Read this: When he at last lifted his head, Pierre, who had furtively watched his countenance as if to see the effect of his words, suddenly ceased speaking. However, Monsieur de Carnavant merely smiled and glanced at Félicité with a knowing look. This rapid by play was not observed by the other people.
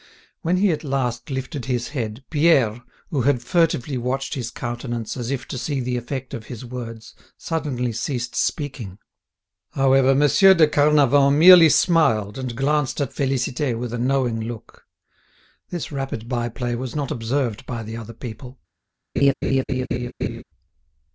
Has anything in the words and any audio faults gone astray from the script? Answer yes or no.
yes